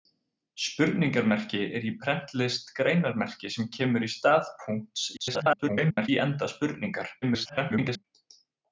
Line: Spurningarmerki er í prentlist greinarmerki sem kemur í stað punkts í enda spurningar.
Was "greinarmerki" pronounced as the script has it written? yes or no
yes